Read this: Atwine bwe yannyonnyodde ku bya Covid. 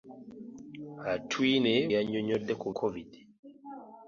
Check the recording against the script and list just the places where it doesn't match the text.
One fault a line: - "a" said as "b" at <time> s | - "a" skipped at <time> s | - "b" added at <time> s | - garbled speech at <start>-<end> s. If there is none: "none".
- "bwe" skipped at 1.7 s
- "bya" skipped at 2.7 s